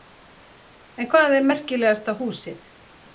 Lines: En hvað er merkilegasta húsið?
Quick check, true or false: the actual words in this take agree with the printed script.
true